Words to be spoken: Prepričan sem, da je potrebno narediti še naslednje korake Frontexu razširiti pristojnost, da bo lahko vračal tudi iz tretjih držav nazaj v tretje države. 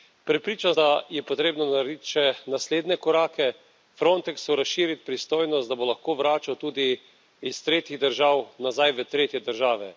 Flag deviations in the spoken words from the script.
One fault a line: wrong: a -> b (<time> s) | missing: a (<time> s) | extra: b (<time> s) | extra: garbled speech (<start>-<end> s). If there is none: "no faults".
missing: sem (0.8 s)